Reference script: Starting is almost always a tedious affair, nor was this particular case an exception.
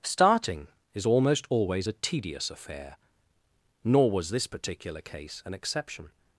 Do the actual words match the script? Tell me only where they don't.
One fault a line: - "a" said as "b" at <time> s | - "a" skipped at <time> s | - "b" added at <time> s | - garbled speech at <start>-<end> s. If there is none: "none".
none